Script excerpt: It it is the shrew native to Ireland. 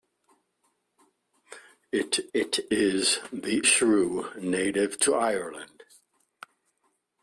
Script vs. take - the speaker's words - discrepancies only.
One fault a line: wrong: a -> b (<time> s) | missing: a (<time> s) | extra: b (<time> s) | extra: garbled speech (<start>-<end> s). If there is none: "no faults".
no faults